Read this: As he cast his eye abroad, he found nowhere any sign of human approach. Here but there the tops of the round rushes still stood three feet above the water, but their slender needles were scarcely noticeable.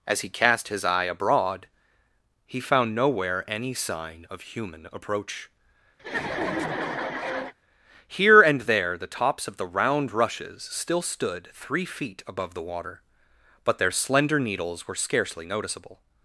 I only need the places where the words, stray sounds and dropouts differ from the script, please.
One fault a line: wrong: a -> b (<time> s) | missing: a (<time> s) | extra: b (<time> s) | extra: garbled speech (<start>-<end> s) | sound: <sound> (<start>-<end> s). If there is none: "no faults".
sound: laugh (6.0-7.5 s)
wrong: but -> and (8.4 s)